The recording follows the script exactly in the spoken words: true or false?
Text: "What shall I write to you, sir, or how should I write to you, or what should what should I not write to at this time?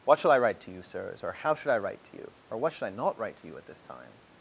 false